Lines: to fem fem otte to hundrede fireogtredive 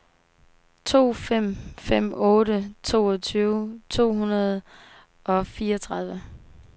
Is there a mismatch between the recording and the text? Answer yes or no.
yes